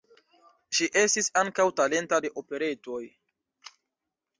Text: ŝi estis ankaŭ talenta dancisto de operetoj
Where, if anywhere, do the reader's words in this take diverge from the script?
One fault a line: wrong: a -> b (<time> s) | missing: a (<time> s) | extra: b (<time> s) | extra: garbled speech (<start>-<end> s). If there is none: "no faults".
missing: dancisto (2.2 s)